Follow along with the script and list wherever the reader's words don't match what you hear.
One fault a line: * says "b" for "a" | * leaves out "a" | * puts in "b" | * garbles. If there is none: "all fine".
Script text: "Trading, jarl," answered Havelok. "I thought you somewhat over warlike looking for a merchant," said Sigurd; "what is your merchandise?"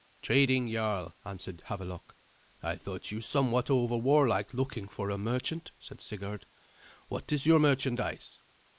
all fine